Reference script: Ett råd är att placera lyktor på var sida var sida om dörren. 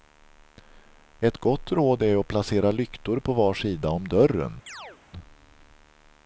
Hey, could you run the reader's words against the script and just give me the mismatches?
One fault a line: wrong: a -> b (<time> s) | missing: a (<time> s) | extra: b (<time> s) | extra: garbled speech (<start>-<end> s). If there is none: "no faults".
extra: gott (1.4 s)
missing: var sida (3.9 s)